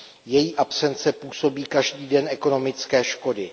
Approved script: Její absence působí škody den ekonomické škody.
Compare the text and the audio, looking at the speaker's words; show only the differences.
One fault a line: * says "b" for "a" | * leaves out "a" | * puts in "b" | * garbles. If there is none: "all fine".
* says "každý" for "škody"